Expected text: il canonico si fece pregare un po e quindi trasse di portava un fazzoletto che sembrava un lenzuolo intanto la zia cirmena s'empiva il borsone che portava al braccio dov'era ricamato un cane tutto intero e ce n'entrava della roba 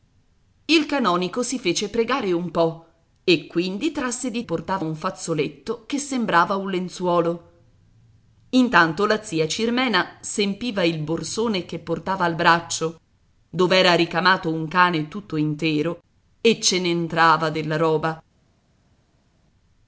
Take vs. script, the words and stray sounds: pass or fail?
pass